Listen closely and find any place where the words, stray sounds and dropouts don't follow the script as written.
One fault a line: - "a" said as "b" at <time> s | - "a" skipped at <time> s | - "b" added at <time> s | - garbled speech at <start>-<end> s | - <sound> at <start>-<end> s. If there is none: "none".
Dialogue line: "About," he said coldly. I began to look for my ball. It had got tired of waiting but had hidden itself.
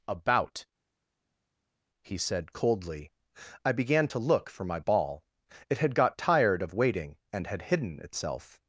- "but" said as "and" at 7.3 s